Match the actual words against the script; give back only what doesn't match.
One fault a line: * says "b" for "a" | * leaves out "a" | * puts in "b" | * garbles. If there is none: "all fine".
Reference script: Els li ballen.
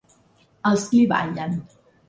all fine